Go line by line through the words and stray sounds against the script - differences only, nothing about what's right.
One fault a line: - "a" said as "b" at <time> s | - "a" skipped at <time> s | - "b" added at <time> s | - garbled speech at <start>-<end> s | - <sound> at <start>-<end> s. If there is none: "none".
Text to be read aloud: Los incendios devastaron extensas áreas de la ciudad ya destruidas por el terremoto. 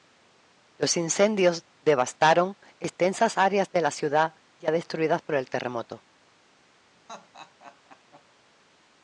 - laugh at 7.1-8.2 s